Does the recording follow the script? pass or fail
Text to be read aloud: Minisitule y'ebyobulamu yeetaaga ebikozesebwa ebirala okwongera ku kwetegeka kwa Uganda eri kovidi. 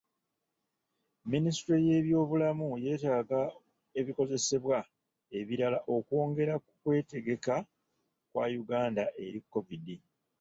pass